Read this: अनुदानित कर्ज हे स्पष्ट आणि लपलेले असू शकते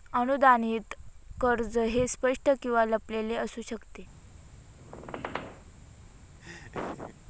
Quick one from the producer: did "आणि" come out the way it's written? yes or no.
no